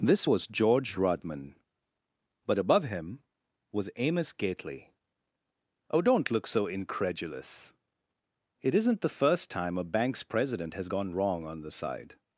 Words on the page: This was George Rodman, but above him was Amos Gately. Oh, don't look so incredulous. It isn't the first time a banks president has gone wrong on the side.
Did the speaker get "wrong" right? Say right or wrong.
right